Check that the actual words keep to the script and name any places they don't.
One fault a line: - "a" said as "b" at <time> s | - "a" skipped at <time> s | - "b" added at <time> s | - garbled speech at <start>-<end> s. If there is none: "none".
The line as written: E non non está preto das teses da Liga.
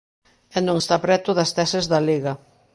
- "non" skipped at 0.8 s